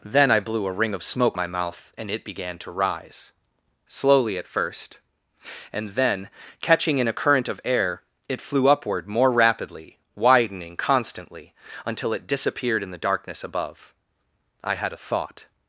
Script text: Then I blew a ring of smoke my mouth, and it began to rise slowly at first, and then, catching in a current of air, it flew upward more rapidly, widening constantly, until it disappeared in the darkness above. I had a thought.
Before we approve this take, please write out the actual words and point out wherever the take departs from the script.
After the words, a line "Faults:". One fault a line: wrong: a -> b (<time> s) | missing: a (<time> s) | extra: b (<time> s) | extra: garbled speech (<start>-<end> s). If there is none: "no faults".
Then I blew a ring of smoke my mouth, and it began to rise slowly at first, and then, catching in a current of air, it flew upward more rapidly, widening constantly, until it disappeared in the darkness above. I had a thought.
Faults:
no faults